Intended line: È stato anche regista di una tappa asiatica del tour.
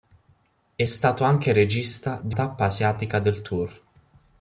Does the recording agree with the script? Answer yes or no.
no